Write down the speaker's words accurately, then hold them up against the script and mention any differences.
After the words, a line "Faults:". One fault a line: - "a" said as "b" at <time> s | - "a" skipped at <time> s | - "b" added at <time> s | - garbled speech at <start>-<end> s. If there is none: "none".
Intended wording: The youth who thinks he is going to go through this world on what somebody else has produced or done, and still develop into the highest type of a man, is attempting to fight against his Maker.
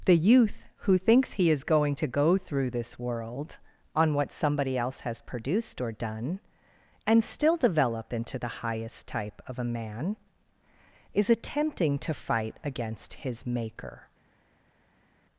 The youth who thinks he is going to go through this world on what somebody else has produced or done, and still develop into the highest type of a man, is attempting to fight against his Maker.
Faults:
none